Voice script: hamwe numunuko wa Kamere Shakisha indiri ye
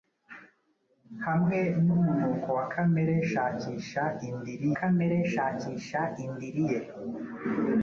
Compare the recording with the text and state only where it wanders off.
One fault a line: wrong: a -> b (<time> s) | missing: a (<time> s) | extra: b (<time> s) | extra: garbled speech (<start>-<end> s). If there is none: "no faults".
extra: Kamere Shakisha indiri (4.8 s)